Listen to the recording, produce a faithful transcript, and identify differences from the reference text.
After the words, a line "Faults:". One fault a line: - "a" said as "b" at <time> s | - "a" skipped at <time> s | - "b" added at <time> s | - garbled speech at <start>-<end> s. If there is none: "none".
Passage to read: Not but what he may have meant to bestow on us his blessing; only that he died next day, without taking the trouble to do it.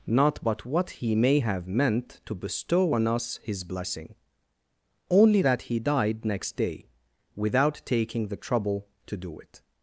Not but what he may have meant to bestow on us his blessing; only that he died next day, without taking the trouble to do it.
Faults:
none